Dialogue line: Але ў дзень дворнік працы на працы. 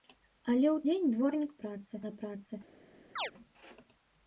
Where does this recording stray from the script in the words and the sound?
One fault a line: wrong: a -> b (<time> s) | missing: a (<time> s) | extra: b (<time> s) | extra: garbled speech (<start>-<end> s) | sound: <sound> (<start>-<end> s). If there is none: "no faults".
sound: chirp (3.2-3.3 s)